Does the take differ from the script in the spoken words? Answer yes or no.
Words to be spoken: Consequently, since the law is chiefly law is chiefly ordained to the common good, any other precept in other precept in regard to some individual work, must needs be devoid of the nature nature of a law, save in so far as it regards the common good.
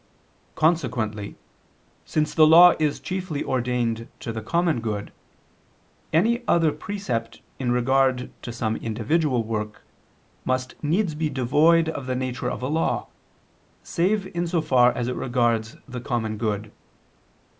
yes